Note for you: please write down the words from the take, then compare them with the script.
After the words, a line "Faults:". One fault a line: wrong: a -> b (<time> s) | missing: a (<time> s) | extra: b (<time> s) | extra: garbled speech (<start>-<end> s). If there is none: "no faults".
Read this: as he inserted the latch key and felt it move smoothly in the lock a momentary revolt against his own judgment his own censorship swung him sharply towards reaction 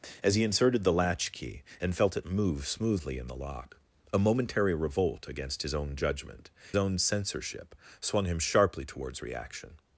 as he inserted the latch key and felt it move smoothly in the lock a momentary revolt against his own judgment own censorship swung him sharply towards reaction
Faults:
missing: his (6.5 s)